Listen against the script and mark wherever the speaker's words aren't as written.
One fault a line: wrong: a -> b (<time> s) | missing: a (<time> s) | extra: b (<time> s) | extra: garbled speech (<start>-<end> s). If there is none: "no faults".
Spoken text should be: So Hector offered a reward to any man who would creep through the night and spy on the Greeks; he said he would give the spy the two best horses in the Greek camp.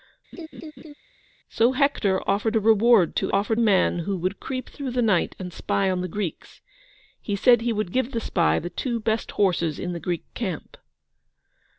wrong: any -> offered (3.3 s)